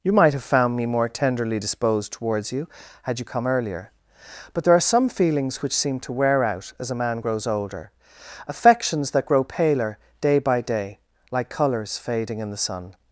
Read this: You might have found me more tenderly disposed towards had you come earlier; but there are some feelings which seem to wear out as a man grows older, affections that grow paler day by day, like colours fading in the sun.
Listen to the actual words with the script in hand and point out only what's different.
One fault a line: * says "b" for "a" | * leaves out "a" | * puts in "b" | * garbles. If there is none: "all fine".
* puts in "you"